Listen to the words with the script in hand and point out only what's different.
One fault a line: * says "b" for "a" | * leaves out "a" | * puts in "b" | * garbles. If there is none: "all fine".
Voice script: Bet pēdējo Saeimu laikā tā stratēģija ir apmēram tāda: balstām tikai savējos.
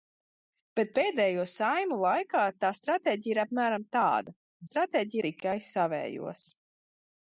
* says "stratēģija" for "balstām"